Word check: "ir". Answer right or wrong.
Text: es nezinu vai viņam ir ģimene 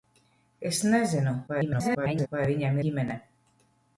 wrong